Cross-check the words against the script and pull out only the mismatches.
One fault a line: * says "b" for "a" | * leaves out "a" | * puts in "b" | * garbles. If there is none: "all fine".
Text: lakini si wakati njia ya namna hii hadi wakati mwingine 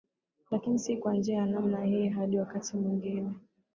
* says "kwa" for "wakati"